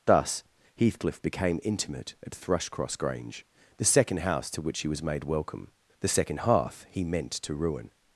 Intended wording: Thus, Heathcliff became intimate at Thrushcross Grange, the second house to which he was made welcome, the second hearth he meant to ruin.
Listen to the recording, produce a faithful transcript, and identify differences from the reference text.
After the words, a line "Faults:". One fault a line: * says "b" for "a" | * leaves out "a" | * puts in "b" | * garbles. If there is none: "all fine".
Thus, Heathcliff became intimate at Thrushcross Grange, the second house to which he was made welcome, the second hearth he meant to ruin.
Faults:
all fine